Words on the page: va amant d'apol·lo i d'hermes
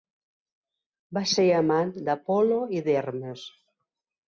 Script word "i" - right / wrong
right